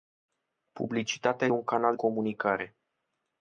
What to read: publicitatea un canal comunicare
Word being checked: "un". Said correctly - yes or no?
yes